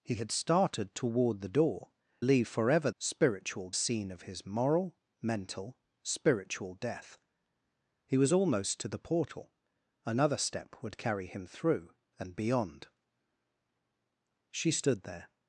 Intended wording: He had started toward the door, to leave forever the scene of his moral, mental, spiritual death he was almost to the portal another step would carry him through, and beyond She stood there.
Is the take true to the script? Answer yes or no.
no